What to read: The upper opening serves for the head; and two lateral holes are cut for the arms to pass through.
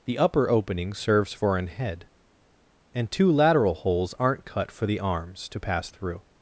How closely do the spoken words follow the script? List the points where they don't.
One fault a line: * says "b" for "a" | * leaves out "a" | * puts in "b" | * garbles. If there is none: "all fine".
* says "an" for "the"
* says "aren't" for "are"